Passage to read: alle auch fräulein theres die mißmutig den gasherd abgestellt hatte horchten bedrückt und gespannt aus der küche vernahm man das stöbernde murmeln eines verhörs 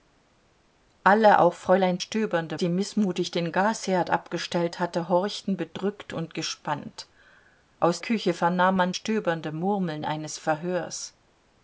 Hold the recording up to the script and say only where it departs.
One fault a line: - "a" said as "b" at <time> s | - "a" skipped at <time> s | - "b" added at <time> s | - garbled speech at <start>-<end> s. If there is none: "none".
- "theres" said as "stöbernde" at 2.0 s
- "der" skipped at 8.0 s
- "das" skipped at 8.9 s